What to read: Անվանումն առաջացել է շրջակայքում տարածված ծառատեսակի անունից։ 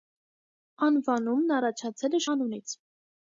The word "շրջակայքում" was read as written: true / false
false